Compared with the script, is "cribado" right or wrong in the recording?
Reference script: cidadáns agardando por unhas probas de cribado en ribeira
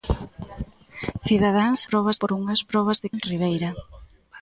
wrong